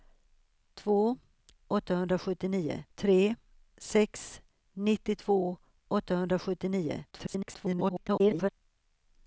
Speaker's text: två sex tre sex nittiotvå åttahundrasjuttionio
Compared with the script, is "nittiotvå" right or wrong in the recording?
right